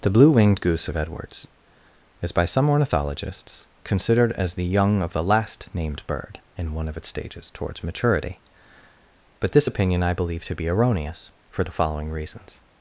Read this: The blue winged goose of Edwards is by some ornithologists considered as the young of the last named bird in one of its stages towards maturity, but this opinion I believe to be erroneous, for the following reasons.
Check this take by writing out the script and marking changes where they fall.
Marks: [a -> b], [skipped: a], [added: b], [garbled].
The blue winged goose of Edwards is by some ornithologists considered as the young of the last named bird in one of its stages towards maturity, but this opinion I believe to be erroneous, for the following reasons.